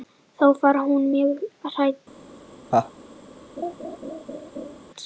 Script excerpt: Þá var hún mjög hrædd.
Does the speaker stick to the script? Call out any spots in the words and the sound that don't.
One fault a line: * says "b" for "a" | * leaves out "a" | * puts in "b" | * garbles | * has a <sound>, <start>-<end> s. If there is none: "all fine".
* has a laugh, 2.7-2.9 s
* has a laugh, 3.6-4.8 s